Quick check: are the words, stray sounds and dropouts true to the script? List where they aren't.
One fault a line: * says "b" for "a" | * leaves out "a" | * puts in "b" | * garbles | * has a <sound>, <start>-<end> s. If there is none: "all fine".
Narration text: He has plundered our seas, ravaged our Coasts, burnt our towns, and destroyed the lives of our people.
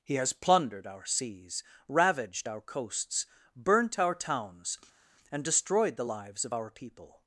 all fine